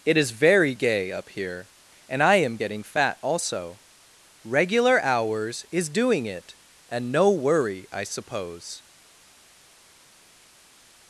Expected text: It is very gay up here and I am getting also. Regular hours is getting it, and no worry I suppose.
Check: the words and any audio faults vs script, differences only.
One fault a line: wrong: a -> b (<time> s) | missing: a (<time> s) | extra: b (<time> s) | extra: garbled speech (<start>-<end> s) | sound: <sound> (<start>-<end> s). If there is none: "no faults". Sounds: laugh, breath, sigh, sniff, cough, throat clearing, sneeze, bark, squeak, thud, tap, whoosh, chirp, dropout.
extra: fat (2.8 s)
wrong: getting -> doing (5.9 s)